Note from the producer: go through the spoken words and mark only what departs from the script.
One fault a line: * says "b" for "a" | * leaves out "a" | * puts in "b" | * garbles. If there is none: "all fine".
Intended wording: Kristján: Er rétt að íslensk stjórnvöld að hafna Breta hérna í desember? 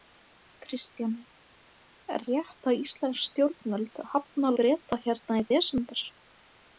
all fine